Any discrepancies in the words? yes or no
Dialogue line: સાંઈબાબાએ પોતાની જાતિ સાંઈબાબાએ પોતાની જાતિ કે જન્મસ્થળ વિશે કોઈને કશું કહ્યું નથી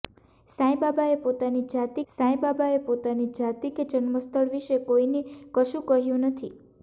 no